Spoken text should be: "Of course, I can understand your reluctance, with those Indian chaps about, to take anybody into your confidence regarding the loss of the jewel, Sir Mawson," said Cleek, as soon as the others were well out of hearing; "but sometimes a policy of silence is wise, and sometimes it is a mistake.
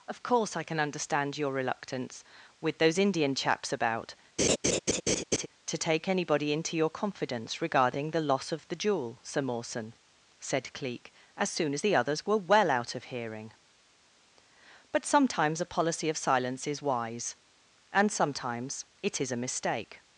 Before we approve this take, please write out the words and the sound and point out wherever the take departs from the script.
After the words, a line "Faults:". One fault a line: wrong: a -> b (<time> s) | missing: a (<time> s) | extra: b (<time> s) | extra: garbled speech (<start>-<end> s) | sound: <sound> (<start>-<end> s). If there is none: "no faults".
"Of course, I can understand your reluctance, with those Indian chaps about, to take anybody into your confidence regarding the loss of the jewel, Sir Mawson," said Cleek, as soon as the others were well out of hearing; "but sometimes a policy of silence is wise, and sometimes it is a mistake.
Faults:
sound: laugh (4.4-5.5 s)